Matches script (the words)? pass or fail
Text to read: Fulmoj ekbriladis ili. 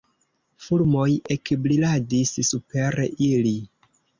fail